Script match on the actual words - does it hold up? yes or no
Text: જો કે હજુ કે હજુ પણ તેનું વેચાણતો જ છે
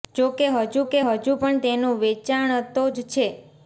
yes